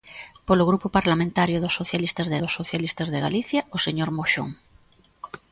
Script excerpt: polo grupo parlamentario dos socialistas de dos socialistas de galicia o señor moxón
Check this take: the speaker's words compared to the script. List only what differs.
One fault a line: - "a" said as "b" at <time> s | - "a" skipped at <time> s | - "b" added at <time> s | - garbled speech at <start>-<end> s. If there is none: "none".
none